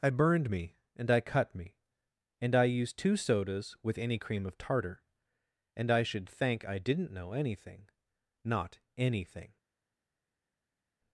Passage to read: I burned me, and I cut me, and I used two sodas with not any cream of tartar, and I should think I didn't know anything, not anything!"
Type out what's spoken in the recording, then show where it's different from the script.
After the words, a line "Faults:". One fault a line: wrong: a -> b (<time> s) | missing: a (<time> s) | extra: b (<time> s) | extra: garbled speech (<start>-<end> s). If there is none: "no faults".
I burned me, and I cut me, and I used two sodas with any cream of tartar, and I should thank I didn't know anything, not anything!"
Faults:
missing: not (4.0 s)
wrong: think -> thank (6.3 s)